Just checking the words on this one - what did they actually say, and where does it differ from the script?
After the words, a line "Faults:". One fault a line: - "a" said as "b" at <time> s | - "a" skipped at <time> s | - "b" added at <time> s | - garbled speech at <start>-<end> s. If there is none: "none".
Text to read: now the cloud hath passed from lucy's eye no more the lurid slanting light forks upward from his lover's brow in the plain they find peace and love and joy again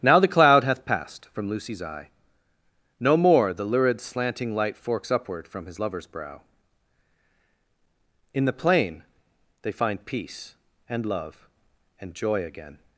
now the cloud hath passed from lucy's eye no more the lurid slanting light forks upward from his lover's brow in the plain they find peace and love and joy again
Faults:
none